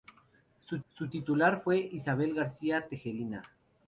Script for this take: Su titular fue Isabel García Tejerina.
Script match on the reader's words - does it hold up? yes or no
no